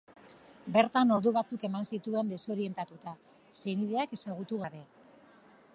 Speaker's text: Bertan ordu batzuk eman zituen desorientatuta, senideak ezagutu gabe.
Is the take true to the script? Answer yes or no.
yes